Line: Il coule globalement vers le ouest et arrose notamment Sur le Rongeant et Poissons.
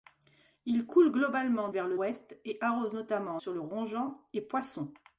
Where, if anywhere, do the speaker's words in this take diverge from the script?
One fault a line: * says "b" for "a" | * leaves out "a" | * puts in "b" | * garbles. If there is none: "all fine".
all fine